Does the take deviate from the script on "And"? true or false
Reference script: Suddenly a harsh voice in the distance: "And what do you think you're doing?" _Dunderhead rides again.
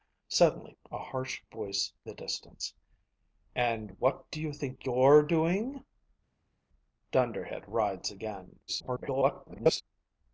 false